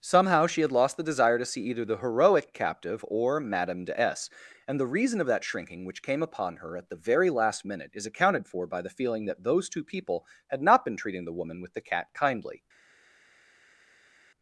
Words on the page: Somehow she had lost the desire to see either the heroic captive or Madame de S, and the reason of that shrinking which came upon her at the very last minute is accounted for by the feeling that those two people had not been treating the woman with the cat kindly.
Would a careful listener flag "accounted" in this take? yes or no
no